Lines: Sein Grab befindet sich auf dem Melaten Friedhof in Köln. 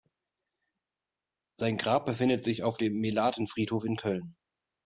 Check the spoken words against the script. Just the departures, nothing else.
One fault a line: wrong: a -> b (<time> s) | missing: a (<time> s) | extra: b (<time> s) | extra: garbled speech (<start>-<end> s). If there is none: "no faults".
no faults